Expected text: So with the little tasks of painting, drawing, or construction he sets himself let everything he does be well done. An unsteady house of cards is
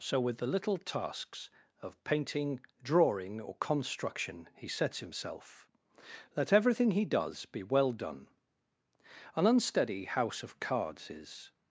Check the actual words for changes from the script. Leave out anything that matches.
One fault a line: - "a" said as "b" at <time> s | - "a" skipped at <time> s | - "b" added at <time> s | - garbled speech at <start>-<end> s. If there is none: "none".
none